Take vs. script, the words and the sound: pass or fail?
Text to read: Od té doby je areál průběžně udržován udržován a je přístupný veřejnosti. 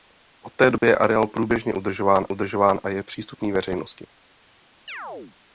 fail